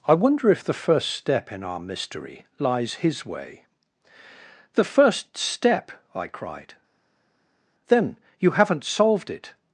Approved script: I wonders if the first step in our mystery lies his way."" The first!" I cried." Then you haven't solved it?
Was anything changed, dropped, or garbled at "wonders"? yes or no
yes